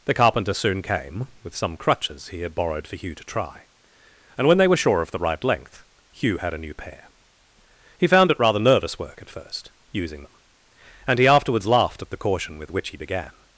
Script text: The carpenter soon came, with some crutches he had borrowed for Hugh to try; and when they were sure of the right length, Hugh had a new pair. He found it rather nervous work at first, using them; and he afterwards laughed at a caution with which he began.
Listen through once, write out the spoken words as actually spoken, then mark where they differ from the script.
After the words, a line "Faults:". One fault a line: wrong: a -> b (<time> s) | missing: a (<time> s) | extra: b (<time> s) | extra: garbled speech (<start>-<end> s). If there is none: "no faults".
The carpenter soon came, with some crutches he had borrowed for Hugh to try; and when they were sure of the right length, Hugh had a new pair. He found it rather nervous work at first, using them; and he afterwards laughed at the caution with which he began.
Faults:
wrong: a -> the (12.1 s)